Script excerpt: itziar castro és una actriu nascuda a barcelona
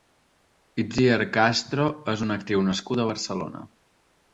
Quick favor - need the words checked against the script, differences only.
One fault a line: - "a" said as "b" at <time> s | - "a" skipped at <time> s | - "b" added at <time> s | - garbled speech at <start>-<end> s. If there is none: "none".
none